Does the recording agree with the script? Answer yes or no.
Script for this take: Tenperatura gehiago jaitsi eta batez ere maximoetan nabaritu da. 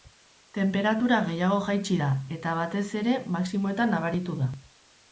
no